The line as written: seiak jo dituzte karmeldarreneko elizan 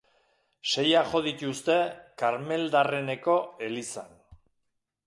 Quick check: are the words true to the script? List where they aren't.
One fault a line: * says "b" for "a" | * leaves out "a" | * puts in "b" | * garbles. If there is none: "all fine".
all fine